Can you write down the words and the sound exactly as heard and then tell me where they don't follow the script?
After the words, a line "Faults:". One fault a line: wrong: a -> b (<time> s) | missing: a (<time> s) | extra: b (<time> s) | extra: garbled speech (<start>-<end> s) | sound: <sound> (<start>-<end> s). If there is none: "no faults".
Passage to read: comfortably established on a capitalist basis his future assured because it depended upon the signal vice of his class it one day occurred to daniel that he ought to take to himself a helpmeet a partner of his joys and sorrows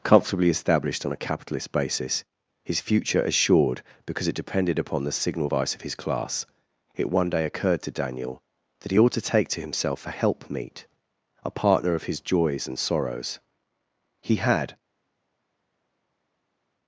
comfortably established on a capitalist basis his future assured because it depended upon the signal vice of his class it one day occurred to daniel that he ought to take to himself a helpmeet a partner of his joys and sorrows he had
Faults:
extra: he had (14.2 s)